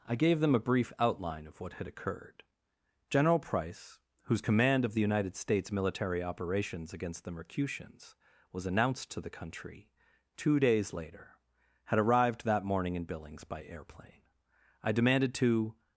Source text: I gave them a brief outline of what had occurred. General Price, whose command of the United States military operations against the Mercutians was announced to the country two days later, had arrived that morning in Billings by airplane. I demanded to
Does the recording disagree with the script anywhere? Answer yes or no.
no